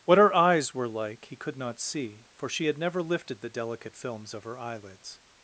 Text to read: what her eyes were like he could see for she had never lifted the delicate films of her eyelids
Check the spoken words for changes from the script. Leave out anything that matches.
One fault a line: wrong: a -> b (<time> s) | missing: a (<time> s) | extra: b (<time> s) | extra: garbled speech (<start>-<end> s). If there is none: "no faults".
extra: not (1.6 s)